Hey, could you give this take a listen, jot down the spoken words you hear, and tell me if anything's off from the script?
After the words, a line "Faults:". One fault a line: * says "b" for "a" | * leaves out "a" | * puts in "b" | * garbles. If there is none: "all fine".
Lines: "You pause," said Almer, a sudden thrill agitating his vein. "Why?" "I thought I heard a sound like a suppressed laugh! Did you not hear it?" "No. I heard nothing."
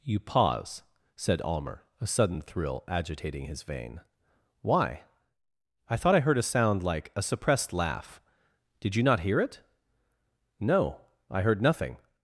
"You pause," said Almer, a sudden thrill agitating his vein. "Why?" "I thought I heard a sound like a suppressed laugh! Did you not hear it?" "No. I heard nothing."
Faults:
all fine